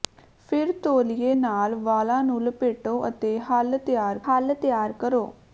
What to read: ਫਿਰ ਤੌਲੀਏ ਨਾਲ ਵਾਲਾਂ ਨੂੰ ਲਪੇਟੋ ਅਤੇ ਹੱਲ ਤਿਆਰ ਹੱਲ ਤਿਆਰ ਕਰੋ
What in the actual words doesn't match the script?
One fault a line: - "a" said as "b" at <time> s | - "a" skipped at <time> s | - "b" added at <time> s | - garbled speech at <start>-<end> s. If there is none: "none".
none